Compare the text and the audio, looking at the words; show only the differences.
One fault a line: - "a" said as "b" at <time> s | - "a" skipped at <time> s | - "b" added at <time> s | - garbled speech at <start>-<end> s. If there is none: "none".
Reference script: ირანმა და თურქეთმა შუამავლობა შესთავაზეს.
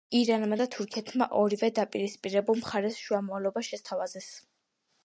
- "ორივე დაპირისპირებულ მხარეს" added at 1.4 s